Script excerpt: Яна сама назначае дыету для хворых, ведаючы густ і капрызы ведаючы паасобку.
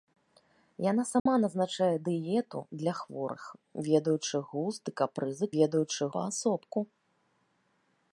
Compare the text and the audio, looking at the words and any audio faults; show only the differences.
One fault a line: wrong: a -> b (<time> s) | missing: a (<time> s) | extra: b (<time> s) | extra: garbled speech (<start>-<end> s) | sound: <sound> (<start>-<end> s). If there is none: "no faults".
sound: dropout (1.2-1.3 s)